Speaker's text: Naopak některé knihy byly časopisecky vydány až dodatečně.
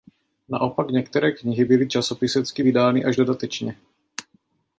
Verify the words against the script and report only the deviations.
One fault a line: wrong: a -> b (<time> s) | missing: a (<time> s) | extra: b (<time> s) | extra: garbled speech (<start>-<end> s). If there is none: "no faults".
no faults